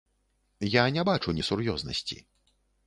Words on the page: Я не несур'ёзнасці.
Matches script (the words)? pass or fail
fail